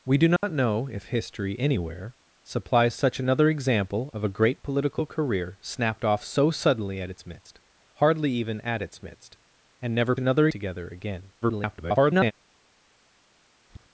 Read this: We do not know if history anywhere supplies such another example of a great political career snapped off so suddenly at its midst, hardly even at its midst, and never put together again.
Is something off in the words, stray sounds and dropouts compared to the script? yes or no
yes